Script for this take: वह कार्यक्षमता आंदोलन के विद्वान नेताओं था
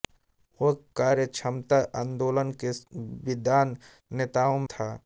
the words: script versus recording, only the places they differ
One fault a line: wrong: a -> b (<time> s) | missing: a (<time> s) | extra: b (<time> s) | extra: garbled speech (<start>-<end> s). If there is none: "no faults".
no faults